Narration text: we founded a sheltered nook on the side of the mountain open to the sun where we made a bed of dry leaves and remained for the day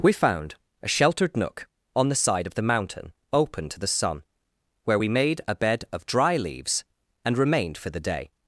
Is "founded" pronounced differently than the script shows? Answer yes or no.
yes